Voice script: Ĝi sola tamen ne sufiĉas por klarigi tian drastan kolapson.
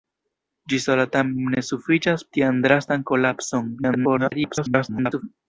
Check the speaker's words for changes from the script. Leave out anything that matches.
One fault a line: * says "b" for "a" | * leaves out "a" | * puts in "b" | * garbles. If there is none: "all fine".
* leaves out "por klarigi"
* garbles